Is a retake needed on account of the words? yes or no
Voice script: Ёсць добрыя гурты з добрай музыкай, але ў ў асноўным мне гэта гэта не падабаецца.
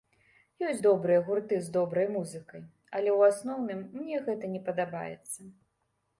yes